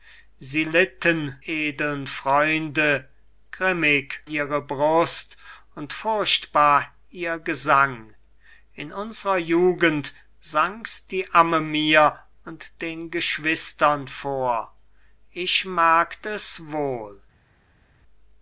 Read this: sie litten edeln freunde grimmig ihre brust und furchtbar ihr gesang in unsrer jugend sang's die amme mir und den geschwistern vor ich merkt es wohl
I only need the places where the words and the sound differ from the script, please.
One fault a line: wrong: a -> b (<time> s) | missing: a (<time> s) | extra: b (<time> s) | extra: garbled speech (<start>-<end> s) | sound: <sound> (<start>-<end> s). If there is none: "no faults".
no faults